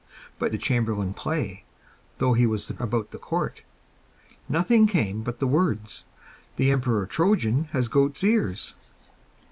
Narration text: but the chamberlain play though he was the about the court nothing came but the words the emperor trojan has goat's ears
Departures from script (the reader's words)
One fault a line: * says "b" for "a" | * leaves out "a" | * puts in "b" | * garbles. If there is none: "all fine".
all fine